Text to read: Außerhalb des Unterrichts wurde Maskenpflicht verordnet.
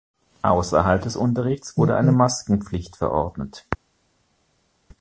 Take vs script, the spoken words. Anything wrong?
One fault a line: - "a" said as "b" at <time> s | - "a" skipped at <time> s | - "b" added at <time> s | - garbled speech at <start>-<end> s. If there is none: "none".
- "eine" added at 1.9 s